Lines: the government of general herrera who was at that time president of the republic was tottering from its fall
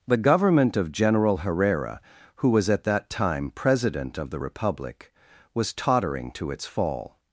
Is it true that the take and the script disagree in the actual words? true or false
true